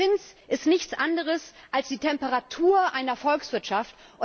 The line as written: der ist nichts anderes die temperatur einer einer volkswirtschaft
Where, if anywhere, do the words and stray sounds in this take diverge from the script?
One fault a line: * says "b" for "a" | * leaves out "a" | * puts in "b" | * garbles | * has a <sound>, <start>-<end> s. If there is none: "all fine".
* puts in "zins"
* puts in "als"
* leaves out "einer"